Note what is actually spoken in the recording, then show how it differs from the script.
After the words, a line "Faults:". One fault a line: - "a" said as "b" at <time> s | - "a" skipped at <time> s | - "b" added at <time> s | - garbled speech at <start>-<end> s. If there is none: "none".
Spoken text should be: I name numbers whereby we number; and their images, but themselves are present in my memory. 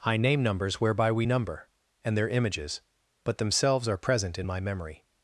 I name numbers whereby we number; and their images, but themselves are present in my memory.
Faults:
none